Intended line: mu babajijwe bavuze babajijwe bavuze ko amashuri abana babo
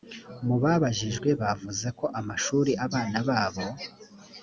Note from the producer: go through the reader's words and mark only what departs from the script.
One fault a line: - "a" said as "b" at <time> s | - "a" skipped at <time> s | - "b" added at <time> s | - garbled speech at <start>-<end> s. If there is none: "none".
- "babajijwe bavuze" skipped at 1.9 s